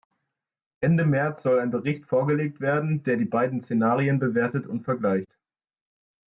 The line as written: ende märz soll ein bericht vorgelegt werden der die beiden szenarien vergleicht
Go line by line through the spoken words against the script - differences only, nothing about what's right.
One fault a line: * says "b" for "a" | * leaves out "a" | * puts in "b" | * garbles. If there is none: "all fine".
* puts in "bewertet und"